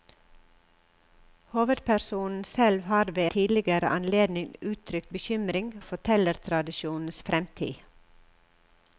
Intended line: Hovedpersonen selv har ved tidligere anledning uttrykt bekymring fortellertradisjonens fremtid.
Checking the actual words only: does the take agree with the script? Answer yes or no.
yes